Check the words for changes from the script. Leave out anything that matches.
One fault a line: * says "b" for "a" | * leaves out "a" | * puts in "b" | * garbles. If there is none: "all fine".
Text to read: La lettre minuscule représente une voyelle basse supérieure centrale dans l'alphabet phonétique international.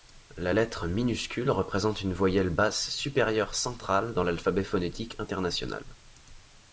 all fine